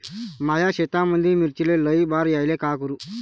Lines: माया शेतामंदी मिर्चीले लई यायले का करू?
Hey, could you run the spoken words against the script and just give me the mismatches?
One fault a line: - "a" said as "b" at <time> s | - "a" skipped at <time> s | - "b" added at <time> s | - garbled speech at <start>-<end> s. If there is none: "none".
- "बार" added at 2.0 s